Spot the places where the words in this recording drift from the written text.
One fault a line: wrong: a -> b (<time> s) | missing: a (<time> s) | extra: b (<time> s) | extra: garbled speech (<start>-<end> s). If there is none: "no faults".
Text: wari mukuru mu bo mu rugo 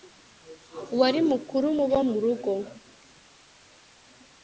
no faults